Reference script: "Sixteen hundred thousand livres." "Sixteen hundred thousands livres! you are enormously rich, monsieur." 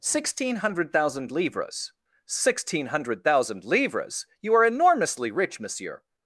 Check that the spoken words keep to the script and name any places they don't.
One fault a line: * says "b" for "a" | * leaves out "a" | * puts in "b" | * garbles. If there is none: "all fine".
* says "thousand" for "thousands"